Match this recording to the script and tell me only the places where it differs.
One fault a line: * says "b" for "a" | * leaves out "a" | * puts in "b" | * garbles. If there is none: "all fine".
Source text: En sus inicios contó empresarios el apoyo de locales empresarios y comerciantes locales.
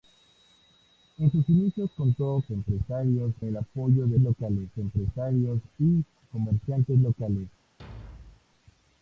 all fine